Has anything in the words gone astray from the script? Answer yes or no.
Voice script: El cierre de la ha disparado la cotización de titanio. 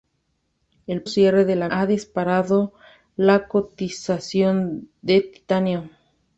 no